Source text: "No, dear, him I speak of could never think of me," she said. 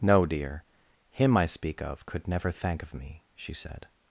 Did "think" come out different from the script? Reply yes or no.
yes